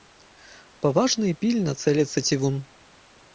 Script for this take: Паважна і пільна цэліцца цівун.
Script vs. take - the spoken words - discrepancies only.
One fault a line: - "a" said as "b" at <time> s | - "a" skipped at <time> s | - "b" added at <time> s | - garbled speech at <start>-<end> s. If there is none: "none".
none